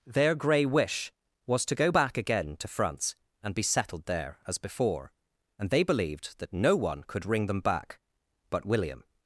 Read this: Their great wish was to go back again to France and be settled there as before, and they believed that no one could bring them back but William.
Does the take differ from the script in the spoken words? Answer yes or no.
yes